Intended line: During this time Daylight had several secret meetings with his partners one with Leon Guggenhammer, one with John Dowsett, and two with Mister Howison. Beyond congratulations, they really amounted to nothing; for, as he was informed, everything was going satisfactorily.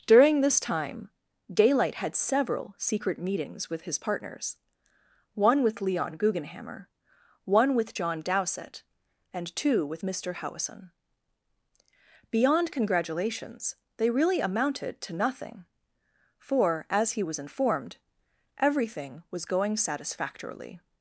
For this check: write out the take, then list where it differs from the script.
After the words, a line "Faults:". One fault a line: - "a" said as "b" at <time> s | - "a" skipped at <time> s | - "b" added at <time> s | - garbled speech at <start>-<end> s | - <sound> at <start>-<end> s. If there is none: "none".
During this time Daylight had several secret meetings with his partners one with Leon Guggenhammer, one with John Dowsett, and two with Mister Howison. Beyond congratulations, they really amounted to nothing; for, as he was informed, everything was going satisfactorily.
Faults:
none